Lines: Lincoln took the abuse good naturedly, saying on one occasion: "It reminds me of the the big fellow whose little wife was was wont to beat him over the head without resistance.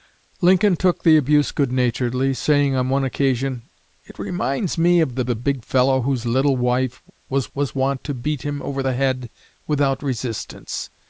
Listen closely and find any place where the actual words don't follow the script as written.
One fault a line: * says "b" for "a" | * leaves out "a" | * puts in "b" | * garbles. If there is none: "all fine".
all fine